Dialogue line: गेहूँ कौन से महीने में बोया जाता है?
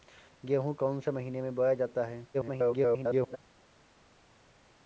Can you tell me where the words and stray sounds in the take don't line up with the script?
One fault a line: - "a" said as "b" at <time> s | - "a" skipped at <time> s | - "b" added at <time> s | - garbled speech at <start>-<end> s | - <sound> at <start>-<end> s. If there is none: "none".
- garbled speech at 2.3-3.4 s